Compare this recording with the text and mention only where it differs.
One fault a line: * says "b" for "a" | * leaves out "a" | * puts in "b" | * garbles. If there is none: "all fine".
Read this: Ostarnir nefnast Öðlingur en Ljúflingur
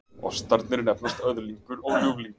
* says "og" for "en"